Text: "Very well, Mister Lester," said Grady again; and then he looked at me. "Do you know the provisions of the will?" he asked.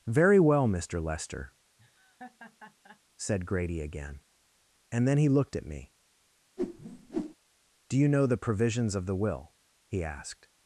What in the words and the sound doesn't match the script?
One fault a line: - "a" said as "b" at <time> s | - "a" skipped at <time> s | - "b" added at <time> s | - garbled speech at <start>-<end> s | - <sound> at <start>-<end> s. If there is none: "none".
- laugh at 1.8-3.0 s
- whoosh at 6.6-7.4 s